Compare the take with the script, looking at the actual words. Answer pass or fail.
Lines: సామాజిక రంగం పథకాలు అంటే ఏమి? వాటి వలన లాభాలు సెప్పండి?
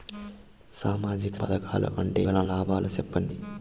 fail